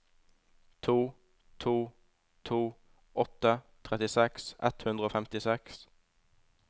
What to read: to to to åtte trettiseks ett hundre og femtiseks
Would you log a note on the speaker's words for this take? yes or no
no